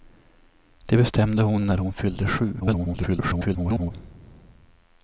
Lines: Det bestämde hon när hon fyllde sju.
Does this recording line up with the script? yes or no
no